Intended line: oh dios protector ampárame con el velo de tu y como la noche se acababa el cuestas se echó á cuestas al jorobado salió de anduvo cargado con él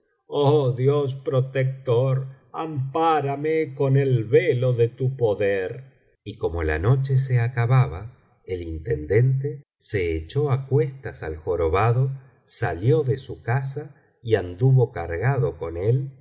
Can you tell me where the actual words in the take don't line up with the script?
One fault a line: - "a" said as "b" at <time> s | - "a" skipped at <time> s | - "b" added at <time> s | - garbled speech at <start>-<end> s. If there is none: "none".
- "poder" added at 5.2 s
- "cuestas" said as "intendente" at 8.6 s
- "su casa y" added at 13.2 s